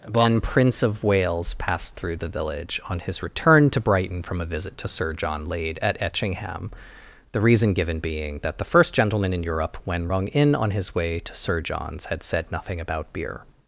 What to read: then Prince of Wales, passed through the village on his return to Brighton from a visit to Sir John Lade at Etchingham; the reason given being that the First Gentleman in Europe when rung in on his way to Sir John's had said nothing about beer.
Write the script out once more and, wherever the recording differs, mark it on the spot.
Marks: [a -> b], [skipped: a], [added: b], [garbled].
[then -> one] Prince of Wales, passed through the village on his return to Brighton from a visit to Sir John Lade at Etchingham; the reason given being that the First Gentleman in Europe when rung in on his way to Sir John's had said nothing about beer.